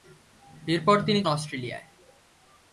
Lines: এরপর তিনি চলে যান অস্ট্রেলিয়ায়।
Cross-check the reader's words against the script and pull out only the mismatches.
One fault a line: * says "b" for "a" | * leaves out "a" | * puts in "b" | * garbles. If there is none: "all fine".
* leaves out "চলে যান"